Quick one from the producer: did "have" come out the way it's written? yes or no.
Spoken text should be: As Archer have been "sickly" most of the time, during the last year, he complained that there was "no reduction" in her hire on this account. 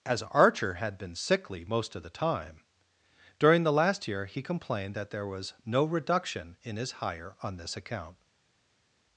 no